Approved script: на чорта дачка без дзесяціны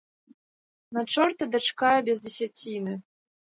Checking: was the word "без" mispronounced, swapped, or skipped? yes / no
no